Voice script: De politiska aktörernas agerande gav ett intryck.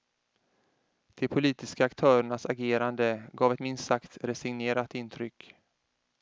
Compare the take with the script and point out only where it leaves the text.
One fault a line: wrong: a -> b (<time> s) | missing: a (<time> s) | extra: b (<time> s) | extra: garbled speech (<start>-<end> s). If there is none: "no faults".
extra: minst sagt resignerat (3.6 s)